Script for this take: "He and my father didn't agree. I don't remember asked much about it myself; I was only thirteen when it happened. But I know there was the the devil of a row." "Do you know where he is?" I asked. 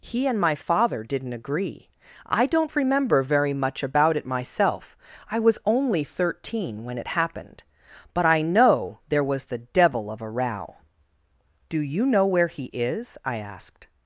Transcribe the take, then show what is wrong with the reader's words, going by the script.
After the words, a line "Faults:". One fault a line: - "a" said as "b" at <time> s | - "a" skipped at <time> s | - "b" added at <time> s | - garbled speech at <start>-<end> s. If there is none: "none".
"He and my father didn't agree. I don't remember very much about it myself; I was only thirteen when it happened. But I know there was the devil of a row." "Do you know where he is?" I asked.
Faults:
- "asked" said as "very" at 3.2 s
- "the" skipped at 9.6 s